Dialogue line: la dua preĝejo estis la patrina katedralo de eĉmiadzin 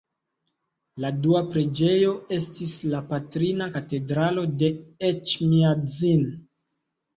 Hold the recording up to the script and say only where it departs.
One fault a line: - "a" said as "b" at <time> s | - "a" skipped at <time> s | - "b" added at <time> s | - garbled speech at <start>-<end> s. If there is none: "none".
none